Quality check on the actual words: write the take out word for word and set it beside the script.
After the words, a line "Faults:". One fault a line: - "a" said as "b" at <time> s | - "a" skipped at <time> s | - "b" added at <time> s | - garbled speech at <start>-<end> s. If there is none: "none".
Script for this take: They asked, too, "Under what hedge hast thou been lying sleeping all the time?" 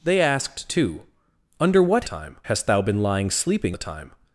They asked, too, "Under what time hast thou been lying sleeping the time?"
Faults:
- "hedge" said as "time" at 2.0 s
- "all" skipped at 3.8 s